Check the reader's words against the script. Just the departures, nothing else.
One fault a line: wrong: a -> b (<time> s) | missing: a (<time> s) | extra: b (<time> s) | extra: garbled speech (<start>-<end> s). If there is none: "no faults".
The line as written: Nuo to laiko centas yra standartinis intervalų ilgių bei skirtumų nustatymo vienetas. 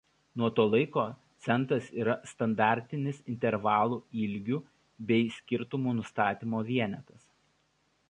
no faults